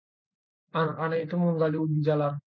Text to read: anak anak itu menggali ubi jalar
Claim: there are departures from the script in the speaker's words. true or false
false